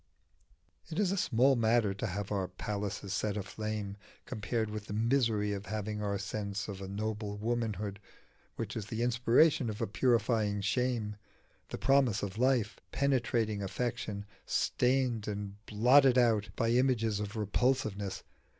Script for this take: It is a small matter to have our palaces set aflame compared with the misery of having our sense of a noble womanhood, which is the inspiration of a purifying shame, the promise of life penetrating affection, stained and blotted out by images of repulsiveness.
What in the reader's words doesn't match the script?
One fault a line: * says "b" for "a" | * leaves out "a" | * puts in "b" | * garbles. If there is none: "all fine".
all fine